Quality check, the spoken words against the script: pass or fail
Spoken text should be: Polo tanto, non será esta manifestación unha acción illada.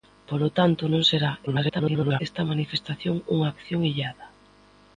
fail